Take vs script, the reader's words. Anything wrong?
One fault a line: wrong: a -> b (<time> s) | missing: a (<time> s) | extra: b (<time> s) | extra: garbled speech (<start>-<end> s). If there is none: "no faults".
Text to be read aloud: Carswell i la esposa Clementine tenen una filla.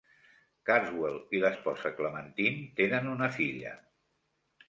no faults